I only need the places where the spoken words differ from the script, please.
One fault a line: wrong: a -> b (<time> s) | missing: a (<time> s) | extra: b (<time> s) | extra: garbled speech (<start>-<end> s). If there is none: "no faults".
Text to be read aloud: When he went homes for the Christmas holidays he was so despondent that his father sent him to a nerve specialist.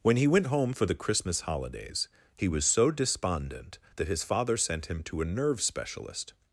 wrong: homes -> home (0.5 s)